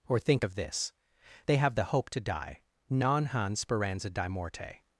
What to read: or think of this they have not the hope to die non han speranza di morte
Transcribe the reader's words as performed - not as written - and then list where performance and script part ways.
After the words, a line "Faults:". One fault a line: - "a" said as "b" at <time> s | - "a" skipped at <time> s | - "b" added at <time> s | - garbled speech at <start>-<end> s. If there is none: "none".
or think of this they have the hope to die non han speranza di morte
Faults:
- "not" skipped at 1.7 s